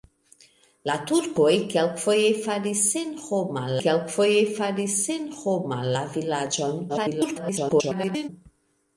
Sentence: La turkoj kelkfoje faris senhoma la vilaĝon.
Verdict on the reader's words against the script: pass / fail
fail